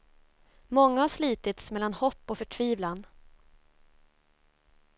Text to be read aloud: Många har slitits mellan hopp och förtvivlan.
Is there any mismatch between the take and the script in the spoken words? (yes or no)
no